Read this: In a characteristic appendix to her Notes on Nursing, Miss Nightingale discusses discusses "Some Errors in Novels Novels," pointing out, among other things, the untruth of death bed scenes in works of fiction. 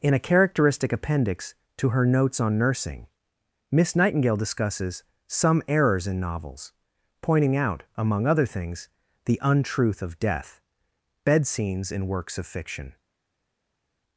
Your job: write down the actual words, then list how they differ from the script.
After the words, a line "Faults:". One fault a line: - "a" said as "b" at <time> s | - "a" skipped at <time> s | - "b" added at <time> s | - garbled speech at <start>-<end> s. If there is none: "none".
In a characteristic appendix to her Notes on Nursing, Miss Nightingale discusses "Some Errors in Novels," pointing out, among other things, the untruth of death bed scenes in works of fiction.
Faults:
- "discusses" skipped at 5.0 s
- "Novels" skipped at 6.7 s